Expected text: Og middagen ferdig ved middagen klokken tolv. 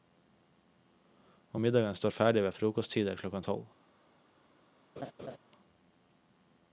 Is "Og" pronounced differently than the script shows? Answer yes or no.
no